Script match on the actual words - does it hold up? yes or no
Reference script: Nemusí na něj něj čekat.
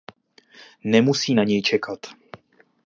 no